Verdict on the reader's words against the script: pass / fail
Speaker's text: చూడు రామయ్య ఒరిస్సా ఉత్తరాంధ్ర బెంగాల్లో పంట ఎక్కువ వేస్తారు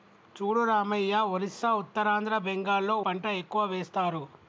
pass